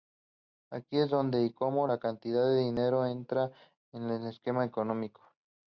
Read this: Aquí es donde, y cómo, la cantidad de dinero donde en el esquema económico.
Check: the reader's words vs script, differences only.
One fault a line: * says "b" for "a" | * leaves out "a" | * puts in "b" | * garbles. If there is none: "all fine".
* says "entra" for "donde"